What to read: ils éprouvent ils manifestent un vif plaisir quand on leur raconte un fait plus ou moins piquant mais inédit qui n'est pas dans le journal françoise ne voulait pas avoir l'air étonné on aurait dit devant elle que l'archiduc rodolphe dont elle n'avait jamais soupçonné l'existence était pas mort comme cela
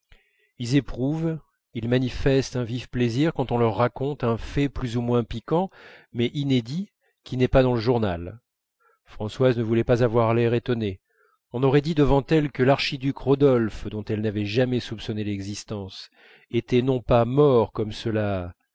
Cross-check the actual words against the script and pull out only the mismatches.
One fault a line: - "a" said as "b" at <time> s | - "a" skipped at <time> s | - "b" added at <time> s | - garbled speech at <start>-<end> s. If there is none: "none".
- "non" added at 16.8 s